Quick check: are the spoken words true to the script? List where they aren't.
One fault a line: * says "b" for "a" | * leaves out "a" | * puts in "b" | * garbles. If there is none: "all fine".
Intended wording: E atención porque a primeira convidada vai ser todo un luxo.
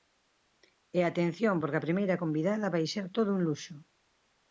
all fine